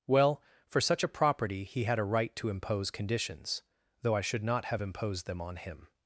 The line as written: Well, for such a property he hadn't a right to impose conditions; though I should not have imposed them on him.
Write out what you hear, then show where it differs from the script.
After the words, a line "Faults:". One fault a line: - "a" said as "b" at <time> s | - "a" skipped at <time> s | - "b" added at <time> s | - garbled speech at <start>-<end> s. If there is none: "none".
Well, for such a property he had a right to impose conditions; though I should not have imposed them on him.
Faults:
- "hadn't" said as "had" at 1.8 s